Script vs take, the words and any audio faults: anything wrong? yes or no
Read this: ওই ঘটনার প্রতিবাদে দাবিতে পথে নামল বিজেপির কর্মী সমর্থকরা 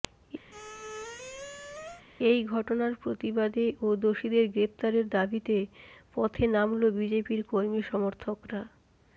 yes